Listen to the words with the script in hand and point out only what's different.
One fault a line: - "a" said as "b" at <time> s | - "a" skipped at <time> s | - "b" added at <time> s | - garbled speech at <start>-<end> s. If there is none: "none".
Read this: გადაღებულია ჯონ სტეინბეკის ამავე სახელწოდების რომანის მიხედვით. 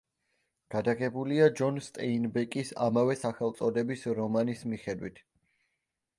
none